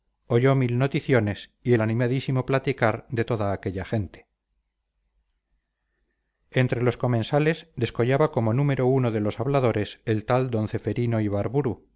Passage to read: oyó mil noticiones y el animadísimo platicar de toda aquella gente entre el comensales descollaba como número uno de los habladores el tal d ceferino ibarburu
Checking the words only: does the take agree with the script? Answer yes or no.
no